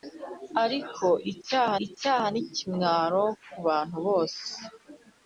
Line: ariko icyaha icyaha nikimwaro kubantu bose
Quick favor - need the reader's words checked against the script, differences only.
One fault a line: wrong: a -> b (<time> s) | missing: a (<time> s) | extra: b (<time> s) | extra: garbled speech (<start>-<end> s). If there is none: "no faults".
no faults